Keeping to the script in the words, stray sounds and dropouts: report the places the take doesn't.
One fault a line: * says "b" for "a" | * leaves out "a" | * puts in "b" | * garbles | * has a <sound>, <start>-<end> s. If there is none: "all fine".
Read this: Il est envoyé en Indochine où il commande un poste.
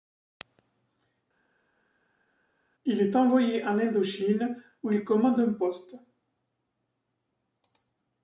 all fine